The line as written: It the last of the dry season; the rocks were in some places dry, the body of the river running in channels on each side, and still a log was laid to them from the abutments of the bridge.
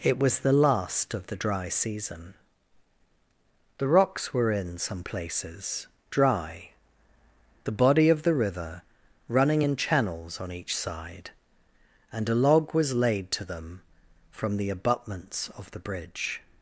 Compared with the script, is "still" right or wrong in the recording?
wrong